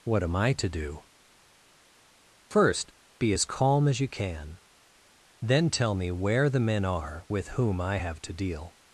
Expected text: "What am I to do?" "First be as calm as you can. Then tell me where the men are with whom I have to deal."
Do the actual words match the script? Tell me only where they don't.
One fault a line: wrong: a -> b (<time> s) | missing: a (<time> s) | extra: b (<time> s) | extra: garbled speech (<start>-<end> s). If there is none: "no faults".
no faults